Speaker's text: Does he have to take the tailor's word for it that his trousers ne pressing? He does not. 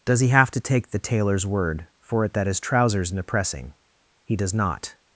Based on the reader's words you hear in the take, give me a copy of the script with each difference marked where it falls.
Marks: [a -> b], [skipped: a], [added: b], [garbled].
Does he have to take the tailor's word for it that his trousers ne pressing? He does not.